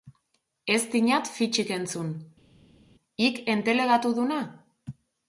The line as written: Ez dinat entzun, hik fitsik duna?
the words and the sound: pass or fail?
fail